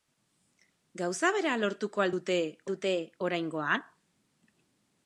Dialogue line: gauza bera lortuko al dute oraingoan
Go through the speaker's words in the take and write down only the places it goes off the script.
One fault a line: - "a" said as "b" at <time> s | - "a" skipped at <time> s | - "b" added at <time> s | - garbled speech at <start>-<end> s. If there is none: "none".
- "dute" added at 2.7 s